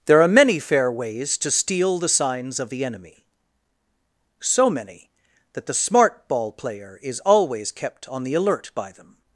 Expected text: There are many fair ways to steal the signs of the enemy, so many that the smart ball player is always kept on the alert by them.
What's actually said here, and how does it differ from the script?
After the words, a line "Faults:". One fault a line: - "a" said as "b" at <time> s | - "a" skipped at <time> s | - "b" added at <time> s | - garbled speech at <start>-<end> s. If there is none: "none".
There are many fair ways to steal the signs of the enemy, so many that the smart ball player is always kept on the alert by them.
Faults:
none